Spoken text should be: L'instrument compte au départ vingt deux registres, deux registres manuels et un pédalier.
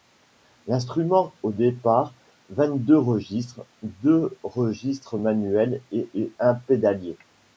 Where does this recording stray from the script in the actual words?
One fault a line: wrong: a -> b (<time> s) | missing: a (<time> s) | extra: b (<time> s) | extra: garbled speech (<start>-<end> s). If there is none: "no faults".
missing: compte (1.3 s)
extra: et (6.1 s)